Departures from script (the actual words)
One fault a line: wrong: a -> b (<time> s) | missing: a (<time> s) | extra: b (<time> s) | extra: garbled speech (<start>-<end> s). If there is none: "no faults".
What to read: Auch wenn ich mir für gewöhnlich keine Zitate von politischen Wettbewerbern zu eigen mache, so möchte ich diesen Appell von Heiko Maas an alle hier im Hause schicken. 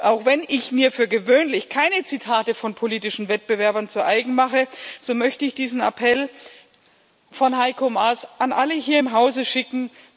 no faults